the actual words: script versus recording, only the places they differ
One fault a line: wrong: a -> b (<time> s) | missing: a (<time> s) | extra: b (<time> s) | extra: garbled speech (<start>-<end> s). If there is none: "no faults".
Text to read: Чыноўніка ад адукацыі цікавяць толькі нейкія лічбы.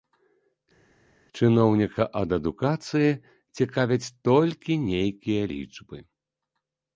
no faults